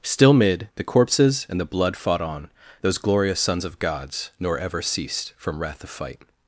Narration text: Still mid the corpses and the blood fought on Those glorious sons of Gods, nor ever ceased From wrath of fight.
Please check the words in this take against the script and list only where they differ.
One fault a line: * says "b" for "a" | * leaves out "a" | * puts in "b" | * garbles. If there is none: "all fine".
all fine